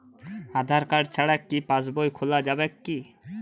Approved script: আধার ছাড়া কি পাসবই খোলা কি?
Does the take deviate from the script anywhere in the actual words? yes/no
yes